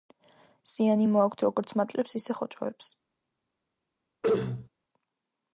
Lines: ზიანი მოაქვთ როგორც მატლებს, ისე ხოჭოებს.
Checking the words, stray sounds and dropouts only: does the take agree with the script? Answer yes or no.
no